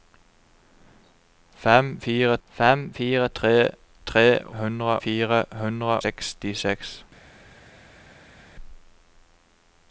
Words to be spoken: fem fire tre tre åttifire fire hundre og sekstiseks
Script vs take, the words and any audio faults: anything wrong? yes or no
yes